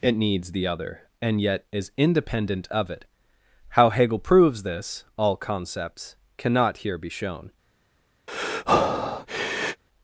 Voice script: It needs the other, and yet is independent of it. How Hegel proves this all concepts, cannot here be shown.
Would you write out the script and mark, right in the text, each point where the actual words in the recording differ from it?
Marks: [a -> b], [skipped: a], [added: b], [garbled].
It needs the other, and yet is independent of it. How Hegel proves this all concepts, cannot here be shown.